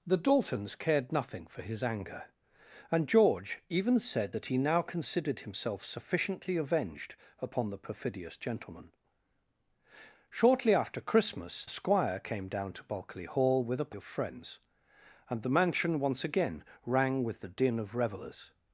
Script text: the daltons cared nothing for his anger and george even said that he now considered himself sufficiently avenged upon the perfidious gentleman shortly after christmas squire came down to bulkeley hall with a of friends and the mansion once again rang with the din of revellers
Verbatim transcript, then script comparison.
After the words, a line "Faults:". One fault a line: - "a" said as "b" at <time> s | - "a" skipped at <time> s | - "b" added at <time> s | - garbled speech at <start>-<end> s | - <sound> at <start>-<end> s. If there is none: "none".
the daltons cared nothing for his anger and george even said that he now considered himself sufficiently avenged upon the perfidious gentleman shortly after christmas squire came down to bulkeley hall with a of friends and the mansion once again rang with the din of revellers
Faults:
none